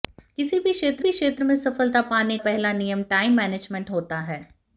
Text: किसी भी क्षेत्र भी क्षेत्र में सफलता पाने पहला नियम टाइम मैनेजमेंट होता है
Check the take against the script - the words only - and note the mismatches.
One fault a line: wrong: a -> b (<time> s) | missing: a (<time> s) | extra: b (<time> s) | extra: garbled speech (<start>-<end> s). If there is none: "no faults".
no faults